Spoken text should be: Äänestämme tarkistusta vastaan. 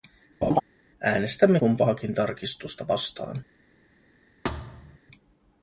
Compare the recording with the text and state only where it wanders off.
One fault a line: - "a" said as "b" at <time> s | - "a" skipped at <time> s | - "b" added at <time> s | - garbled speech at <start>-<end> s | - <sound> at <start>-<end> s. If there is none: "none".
- laugh at 0.4-0.6 s
- "kumpaakin" added at 1.5 s
- thud at 4.4-5.0 s